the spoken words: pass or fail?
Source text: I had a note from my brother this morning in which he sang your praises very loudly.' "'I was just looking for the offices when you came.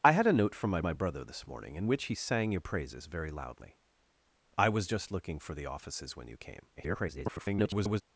fail